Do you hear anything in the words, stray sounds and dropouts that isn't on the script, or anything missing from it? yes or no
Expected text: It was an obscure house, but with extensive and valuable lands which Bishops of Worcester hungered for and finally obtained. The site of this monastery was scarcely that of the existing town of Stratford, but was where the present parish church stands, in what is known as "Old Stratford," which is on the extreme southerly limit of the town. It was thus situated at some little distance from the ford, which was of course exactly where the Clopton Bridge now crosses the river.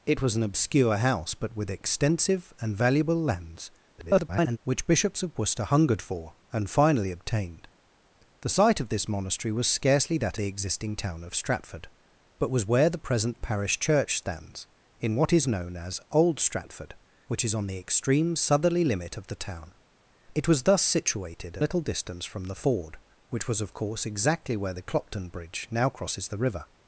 yes